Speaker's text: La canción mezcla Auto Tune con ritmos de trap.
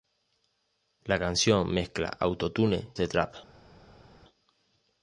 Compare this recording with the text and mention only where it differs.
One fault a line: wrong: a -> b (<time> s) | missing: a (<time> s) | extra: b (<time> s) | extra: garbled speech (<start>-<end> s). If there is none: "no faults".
missing: con ritmos (2.9 s)